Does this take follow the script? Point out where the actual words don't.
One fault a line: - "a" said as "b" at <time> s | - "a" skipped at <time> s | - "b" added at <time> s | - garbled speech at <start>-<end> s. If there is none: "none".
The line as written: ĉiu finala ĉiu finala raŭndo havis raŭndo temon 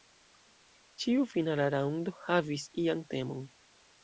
- "ĉiu finala" skipped at 1.7 s
- "raŭndo" said as "ian" at 2.9 s